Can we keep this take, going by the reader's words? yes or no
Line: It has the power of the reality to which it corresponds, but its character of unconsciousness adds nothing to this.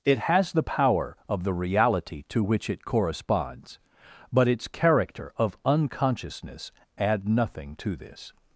no